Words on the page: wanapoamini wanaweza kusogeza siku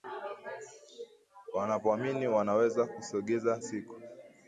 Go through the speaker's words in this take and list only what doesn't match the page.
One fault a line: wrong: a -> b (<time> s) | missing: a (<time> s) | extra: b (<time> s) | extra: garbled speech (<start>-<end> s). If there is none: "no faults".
no faults